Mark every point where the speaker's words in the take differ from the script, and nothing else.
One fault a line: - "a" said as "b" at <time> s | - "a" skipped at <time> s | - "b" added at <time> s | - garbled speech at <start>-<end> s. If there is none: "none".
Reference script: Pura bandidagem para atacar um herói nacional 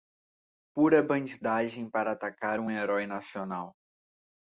none